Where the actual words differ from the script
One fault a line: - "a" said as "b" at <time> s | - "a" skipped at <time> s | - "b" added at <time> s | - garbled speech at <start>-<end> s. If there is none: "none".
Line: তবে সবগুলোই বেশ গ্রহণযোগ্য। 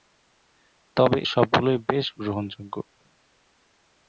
none